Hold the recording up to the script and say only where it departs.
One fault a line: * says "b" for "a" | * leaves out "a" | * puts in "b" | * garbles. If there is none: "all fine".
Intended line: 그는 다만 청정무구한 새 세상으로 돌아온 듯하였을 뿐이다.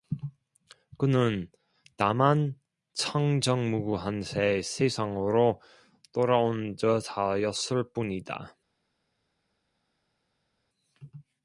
all fine